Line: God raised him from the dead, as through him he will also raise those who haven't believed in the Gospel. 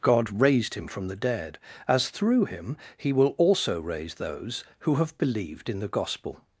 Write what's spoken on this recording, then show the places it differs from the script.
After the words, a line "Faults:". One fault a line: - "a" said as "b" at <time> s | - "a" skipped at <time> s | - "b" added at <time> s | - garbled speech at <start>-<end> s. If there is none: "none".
God raised him from the dead, as through him he will also raise those who have believed in the Gospel.
Faults:
- "haven't" said as "have" at 5.0 s